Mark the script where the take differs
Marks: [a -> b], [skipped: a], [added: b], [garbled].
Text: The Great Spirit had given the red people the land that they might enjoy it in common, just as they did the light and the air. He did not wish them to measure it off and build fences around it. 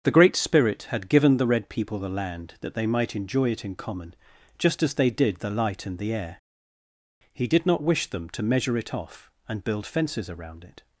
The Great Spirit had given the red people the land that they might enjoy it in common, just as they did the light and the air. He did not wish them to measure it off and build fences around it.